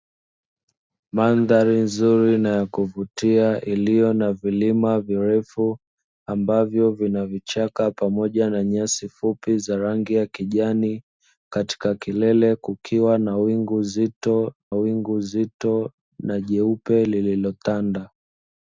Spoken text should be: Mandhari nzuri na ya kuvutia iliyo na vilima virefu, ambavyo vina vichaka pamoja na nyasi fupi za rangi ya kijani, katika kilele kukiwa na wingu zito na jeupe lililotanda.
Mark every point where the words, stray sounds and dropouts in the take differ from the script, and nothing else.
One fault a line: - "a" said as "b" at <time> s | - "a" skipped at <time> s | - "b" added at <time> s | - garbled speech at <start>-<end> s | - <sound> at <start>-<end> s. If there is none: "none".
- "wingu zito" added at 14.7 s